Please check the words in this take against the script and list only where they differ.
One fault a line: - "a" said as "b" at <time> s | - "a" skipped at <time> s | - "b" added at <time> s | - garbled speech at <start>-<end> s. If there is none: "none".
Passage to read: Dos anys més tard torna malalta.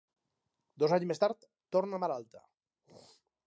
none